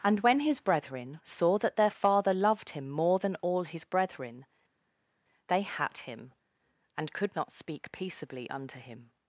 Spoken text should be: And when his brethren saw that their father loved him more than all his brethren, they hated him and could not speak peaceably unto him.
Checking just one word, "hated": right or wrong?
wrong